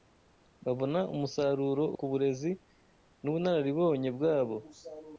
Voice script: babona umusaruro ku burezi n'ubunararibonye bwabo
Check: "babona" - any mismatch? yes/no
no